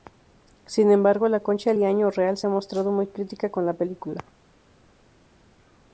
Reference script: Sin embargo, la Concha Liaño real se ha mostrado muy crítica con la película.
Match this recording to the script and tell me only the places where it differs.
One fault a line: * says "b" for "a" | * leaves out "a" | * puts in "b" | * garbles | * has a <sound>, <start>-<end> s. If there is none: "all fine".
all fine